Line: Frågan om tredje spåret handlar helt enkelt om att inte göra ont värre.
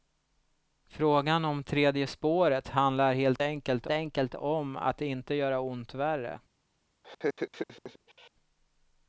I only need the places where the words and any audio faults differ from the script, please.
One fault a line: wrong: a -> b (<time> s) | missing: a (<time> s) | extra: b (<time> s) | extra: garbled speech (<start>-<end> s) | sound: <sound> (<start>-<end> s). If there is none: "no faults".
extra: enkelt (3.9 s)
sound: laugh (7.0-8.3 s)